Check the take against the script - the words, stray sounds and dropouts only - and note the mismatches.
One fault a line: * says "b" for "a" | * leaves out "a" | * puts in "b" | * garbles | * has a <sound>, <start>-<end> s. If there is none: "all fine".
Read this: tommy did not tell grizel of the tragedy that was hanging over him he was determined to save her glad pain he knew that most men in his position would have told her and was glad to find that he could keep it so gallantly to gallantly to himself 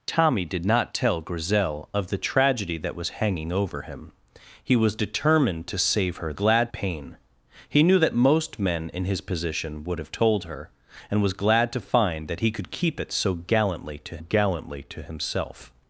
all fine